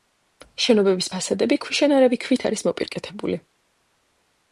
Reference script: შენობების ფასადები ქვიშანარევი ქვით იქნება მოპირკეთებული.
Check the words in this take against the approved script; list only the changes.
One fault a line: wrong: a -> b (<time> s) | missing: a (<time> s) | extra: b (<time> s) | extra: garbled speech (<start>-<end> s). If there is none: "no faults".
wrong: იქნება -> არის (2.5 s)